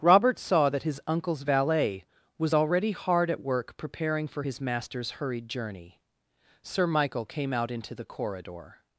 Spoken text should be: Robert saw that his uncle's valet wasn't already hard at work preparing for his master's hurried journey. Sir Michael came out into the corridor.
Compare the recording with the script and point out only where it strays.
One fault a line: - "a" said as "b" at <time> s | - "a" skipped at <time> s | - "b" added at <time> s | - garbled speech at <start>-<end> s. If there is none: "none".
- "wasn't" said as "was" at 2.4 s